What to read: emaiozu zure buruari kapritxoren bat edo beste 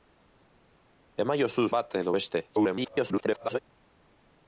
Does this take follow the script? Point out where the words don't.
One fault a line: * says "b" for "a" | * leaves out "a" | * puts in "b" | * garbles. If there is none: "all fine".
* leaves out "zure buruari kapritxoren"
* garbles